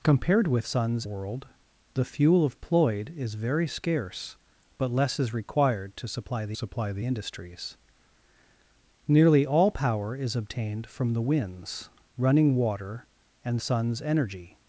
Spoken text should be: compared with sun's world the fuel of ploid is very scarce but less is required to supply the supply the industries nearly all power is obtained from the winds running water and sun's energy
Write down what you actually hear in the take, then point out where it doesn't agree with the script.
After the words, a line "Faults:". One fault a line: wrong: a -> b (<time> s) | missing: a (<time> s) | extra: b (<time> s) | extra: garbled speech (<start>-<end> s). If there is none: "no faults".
compared with sun's world the fuel of ploid is very scarce but less is required to supply the supply the industries nearly all power is obtained from the winds running water and sun's energy
Faults:
no faults